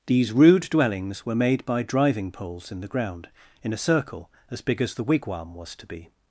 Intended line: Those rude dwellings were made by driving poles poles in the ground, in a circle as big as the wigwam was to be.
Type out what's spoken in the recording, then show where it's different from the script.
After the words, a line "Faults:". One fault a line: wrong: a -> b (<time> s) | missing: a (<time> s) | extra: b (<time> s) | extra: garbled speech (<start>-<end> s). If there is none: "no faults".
These rude dwellings were made by driving poles in the ground, in a circle as big as the wigwam was to be.
Faults:
wrong: Those -> These (0.1 s)
missing: poles (2.7 s)